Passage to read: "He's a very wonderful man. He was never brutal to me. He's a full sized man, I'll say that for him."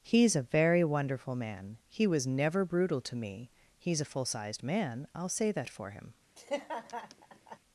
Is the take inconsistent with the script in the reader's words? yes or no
no